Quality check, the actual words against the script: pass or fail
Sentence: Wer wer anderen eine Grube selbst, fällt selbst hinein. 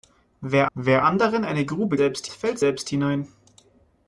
pass